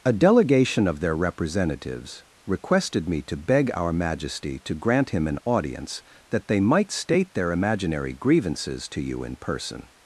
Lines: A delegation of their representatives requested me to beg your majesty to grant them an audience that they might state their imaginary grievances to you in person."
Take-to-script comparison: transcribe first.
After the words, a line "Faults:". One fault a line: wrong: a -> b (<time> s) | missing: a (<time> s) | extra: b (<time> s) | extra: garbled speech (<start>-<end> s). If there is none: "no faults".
A delegation of their representatives requested me to beg our majesty to grant him an audience that they might state their imaginary grievances to you in person."
Faults:
wrong: your -> our (3.8 s)
wrong: them -> him (5.1 s)